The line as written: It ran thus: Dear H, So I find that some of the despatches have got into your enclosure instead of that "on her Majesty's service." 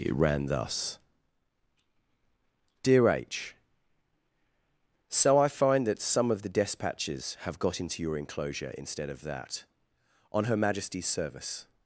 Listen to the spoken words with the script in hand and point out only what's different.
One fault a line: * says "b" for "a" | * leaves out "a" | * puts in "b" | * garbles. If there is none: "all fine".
all fine